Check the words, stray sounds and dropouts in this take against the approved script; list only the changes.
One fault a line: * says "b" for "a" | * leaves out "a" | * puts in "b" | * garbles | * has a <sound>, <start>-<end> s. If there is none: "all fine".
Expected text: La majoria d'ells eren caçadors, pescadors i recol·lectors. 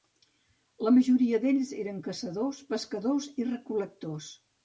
all fine